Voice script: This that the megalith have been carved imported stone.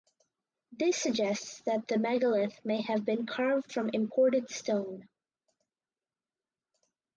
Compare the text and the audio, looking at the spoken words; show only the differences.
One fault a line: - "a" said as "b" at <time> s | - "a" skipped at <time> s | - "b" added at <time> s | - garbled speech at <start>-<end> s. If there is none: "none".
- "suggests" added at 1.0 s
- "may" added at 2.6 s
- "from" added at 3.7 s